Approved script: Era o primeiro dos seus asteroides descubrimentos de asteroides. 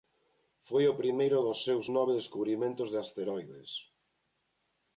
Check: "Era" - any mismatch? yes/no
yes